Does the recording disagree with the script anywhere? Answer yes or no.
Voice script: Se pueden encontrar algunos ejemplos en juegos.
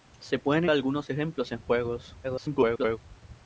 yes